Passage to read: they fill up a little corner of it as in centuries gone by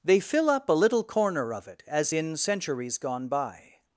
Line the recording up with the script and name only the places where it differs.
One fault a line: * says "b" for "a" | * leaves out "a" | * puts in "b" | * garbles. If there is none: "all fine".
all fine